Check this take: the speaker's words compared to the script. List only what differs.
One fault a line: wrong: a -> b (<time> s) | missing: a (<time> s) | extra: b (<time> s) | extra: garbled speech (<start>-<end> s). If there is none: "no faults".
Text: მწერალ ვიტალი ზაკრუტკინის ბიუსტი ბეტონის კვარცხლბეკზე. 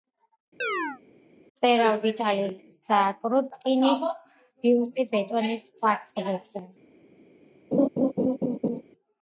no faults